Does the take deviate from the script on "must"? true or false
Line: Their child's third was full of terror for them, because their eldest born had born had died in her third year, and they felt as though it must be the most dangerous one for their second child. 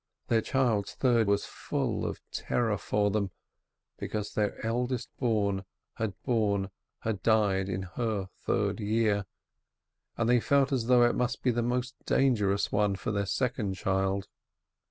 false